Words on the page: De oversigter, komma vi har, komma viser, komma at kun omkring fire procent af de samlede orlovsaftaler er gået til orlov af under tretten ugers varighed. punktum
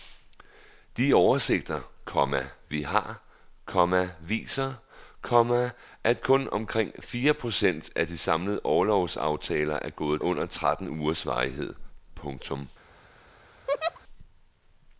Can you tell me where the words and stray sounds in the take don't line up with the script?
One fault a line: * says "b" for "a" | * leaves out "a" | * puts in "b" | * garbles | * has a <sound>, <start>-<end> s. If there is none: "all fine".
* leaves out "til orlov af"
* has a laugh, 13.7-14.0 s